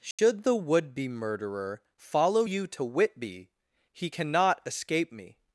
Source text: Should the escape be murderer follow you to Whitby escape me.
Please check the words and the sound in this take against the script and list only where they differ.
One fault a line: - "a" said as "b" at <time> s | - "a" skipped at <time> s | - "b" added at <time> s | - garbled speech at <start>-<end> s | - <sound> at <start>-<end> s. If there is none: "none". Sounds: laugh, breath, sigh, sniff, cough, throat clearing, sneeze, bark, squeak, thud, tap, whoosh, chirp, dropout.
- dropout at 0.1-0.2 s
- "escape" said as "would" at 0.6 s
- "he cannot" added at 3.9 s